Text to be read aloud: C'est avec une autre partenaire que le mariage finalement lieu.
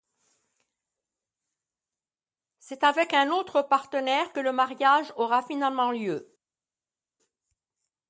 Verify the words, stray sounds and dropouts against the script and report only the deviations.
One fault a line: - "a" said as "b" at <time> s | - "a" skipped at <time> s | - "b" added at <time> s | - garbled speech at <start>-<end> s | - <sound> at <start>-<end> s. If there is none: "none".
- "une" said as "un" at 3.1 s
- "aura" added at 5.2 s